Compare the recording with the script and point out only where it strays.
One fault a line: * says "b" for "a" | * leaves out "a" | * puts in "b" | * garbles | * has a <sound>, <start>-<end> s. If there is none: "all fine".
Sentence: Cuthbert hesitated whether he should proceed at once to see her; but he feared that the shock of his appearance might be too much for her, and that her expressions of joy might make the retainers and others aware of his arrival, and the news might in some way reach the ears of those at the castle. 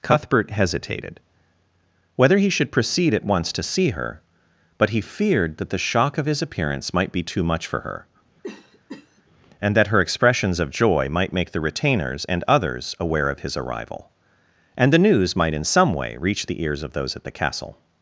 * has a cough, 8.4-9.2 s